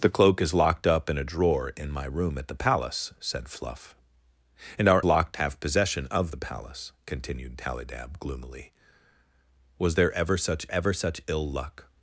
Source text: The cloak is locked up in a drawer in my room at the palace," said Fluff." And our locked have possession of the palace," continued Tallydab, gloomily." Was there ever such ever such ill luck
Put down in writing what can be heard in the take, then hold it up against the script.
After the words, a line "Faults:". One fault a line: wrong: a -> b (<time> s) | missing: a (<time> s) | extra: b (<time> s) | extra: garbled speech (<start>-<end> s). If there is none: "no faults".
The cloak is locked up in a drawer in my room at the palace," said Fluff." And our locked have possession of the palace," continued Tallydab, gloomily." Was there ever such ever such ill luck
Faults:
no faults